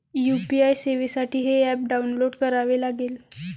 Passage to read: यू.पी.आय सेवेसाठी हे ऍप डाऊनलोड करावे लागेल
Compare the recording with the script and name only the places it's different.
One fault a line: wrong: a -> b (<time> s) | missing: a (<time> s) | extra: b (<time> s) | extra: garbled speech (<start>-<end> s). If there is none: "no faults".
no faults